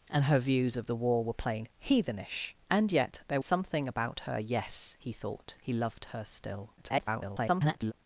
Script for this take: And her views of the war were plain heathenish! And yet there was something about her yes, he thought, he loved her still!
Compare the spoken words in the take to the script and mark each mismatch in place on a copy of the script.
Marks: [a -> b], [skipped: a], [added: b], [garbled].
And her views of the war were plain heathenish! And yet there [skipped: was] something about her yes, he thought, he loved her still! [garbled]